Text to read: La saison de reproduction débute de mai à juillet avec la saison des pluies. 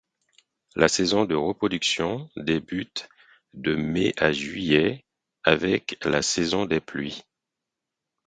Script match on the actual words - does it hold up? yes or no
yes